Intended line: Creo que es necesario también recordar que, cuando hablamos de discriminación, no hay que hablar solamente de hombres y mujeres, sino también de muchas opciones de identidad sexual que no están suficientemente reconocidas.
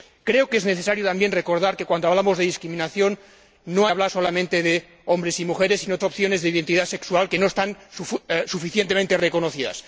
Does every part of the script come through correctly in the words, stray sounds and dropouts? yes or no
no